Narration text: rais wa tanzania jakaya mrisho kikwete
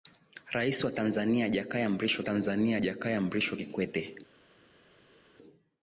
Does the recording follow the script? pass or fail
fail